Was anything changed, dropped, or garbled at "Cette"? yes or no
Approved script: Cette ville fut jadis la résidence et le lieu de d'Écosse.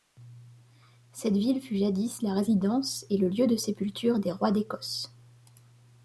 no